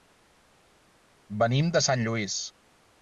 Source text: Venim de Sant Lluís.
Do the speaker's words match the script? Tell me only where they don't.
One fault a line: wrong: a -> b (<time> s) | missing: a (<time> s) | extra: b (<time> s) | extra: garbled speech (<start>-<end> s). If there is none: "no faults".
no faults